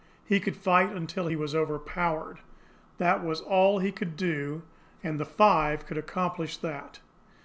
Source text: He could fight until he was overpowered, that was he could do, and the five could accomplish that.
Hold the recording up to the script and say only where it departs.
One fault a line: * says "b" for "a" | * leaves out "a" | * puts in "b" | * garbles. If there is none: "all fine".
* puts in "all"